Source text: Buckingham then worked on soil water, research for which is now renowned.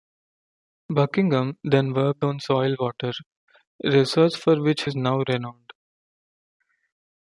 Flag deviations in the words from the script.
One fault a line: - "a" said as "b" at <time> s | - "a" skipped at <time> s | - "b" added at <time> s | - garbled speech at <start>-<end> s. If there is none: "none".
none